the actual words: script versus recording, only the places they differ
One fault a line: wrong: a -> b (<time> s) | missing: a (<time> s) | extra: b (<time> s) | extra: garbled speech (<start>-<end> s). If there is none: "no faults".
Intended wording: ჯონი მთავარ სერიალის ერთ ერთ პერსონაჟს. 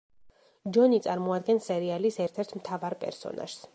wrong: მთავარ -> წარმოადგენს (1.1 s)
extra: მთავარ (2.6 s)